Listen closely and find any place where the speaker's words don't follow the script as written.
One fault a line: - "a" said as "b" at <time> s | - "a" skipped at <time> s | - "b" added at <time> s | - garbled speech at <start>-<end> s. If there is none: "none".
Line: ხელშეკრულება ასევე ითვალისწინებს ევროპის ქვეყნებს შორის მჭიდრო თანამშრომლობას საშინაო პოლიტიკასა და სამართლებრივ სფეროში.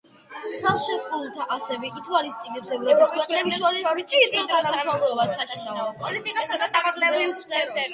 none